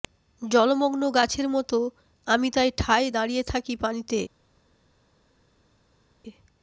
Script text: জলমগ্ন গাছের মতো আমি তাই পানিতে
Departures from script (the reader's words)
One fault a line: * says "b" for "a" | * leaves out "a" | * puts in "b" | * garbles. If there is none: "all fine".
* puts in "ঠায় দাঁড়িয়ে থাকি"